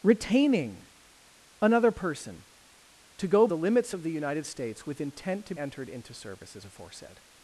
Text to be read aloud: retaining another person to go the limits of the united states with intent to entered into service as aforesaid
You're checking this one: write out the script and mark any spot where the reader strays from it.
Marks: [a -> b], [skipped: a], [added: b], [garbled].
retaining another person to go the limits of the united states with intent to entered into service as aforesaid